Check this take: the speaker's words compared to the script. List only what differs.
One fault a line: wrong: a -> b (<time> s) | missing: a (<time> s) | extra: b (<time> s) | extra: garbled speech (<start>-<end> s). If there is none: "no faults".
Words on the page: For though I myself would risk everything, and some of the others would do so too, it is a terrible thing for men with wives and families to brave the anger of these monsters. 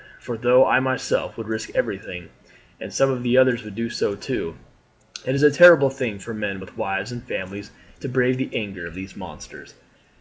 no faults